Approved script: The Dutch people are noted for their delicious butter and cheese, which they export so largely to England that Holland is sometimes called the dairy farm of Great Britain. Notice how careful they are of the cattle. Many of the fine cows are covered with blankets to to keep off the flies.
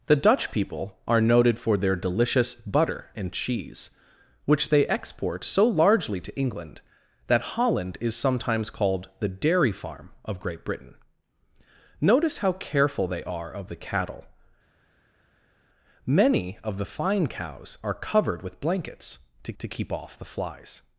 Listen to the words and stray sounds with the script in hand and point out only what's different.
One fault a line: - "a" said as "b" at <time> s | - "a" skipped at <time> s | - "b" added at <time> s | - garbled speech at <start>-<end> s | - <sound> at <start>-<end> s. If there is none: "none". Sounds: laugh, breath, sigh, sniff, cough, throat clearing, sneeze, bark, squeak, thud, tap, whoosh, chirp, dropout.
none